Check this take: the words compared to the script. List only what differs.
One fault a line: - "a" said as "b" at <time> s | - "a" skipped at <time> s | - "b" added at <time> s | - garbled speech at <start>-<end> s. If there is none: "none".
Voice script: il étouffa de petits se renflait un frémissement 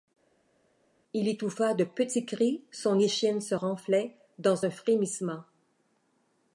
- "cris son échine" added at 2.2 s
- "dans" added at 4.4 s